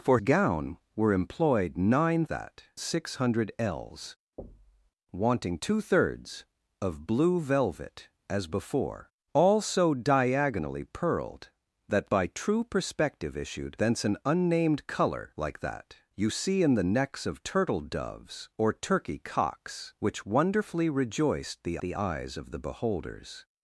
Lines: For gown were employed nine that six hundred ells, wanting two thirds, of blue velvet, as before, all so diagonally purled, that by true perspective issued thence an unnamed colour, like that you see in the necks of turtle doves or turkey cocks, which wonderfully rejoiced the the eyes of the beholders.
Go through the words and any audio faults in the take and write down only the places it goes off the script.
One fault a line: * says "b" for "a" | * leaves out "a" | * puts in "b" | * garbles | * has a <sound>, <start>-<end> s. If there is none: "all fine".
* has a thud, 4.4-4.9 s